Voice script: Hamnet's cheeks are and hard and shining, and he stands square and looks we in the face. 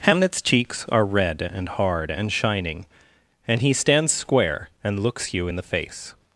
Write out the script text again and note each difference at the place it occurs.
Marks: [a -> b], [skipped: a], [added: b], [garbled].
Hamnet's cheeks are [added: red] and hard and shining, and he stands square and looks [we -> you] in the face.